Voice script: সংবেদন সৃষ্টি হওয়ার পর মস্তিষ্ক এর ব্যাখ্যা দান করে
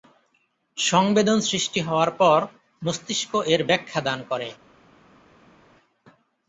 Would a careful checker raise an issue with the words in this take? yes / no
no